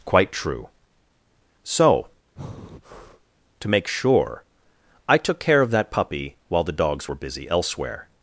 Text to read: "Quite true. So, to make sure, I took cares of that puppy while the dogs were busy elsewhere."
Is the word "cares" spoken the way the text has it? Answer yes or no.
no